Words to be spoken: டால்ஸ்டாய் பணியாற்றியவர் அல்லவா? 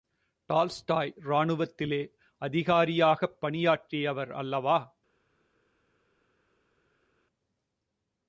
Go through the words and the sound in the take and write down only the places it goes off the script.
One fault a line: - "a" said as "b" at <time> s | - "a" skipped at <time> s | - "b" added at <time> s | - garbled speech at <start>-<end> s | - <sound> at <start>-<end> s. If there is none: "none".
- "ராணுவத்திலே அதிகாரியாகப்" added at 1.2 s